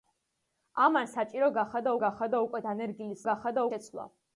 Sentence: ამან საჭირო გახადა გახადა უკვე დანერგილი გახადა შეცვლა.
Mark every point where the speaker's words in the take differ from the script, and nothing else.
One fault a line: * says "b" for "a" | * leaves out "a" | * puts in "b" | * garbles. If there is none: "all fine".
all fine